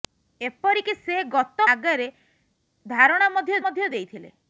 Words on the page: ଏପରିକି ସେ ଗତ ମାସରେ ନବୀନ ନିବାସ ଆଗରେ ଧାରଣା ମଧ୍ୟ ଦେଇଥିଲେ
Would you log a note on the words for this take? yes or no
yes